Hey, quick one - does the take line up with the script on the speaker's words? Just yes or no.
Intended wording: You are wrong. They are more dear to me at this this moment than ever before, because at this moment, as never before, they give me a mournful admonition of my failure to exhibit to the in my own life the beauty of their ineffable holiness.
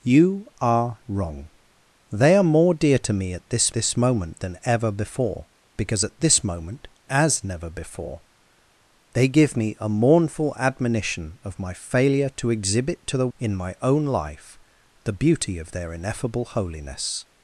yes